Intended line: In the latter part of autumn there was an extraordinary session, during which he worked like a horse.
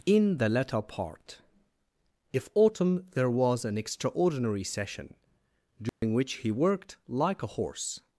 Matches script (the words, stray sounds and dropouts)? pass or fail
fail